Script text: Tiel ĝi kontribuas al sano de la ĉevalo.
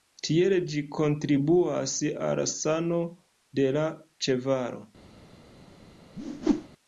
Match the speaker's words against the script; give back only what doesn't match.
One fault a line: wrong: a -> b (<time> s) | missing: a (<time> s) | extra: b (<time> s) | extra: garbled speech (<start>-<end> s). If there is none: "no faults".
no faults